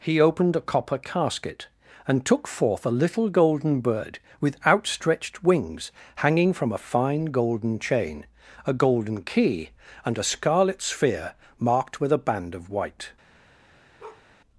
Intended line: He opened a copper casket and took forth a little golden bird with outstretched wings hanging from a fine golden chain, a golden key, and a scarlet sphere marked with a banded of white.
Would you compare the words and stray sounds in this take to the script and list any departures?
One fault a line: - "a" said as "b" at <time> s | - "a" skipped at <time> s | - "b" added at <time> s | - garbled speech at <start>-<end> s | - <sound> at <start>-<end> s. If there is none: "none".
- "banded" said as "band" at 12.2 s
- bark at 14.0-14.3 s